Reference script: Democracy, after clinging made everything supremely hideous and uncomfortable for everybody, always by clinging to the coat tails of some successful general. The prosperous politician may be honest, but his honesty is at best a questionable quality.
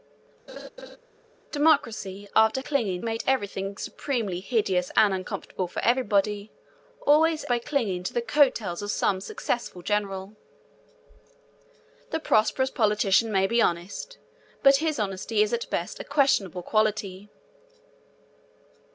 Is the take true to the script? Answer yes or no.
yes